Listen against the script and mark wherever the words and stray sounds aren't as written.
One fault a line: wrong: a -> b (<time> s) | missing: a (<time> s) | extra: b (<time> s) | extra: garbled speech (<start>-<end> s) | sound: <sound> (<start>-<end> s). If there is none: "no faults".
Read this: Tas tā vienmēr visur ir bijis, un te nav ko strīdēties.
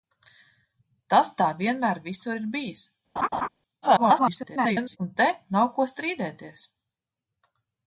sound: laugh (3.2-3.5 s)
extra: garbled speech (3.8-5.0 s)